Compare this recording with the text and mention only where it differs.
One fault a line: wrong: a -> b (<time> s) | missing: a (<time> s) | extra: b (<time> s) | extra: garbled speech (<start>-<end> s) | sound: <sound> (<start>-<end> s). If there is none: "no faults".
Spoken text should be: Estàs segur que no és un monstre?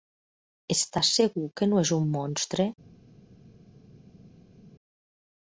no faults